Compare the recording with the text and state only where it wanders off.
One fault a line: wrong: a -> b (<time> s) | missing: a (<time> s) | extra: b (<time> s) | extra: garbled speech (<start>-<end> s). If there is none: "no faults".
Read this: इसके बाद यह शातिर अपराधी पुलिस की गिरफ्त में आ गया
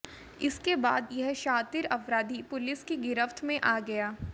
no faults